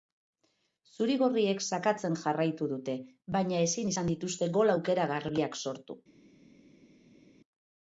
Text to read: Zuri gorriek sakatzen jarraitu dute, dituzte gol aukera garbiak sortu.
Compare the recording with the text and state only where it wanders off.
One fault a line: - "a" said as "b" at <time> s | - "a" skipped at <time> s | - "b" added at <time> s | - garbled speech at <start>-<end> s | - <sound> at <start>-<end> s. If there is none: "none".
- "baina ezin izan" added at 3.4 s